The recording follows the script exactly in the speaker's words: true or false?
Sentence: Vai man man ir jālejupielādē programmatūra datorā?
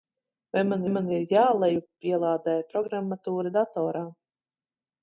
true